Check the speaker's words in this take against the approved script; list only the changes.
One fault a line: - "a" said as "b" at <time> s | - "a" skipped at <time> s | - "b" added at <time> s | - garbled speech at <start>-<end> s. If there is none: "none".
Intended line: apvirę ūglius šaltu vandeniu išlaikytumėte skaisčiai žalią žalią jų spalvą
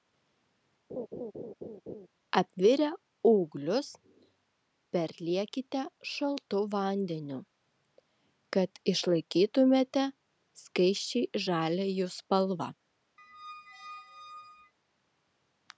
- "perliekite" added at 5.0 s
- "kad" added at 8.6 s
- "žalią" skipped at 11.9 s